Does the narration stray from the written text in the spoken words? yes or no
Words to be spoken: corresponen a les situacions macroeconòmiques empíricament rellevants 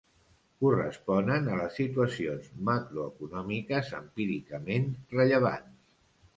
no